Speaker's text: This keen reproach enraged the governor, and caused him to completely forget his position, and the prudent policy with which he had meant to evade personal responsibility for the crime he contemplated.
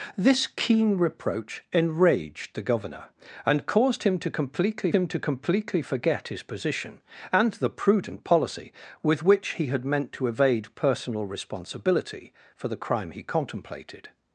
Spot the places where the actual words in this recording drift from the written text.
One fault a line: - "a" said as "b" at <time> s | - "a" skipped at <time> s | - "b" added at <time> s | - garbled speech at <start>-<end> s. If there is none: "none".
- "him to completely" added at 4.9 s